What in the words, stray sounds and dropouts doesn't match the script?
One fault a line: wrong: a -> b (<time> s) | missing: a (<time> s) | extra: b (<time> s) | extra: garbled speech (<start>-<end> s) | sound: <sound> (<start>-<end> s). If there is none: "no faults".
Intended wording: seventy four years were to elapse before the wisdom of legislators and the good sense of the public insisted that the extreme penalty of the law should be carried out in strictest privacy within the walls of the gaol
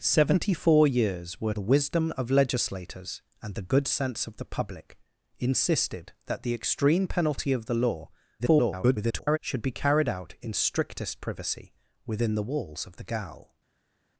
missing: to elapse before (1.5 s)
extra: garbled speech (8.4-9.4 s)